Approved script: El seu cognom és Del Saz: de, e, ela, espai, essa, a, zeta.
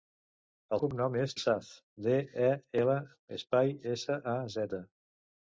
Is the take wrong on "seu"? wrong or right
wrong